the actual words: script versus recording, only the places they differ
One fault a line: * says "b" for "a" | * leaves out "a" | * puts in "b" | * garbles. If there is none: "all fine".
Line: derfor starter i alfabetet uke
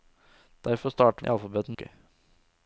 all fine